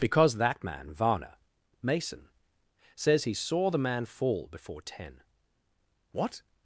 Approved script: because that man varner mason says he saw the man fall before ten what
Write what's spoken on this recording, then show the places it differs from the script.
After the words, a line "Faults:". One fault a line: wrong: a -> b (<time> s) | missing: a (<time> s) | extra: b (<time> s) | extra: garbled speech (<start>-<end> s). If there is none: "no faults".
because that man varner mason says he saw the man fall before ten what
Faults:
no faults